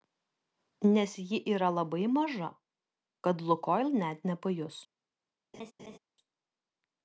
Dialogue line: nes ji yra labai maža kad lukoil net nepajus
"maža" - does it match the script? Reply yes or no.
yes